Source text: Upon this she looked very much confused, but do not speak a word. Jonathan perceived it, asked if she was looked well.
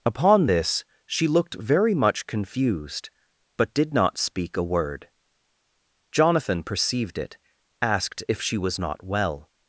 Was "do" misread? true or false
true